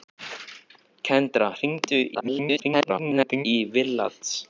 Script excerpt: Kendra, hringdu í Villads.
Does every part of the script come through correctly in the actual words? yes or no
no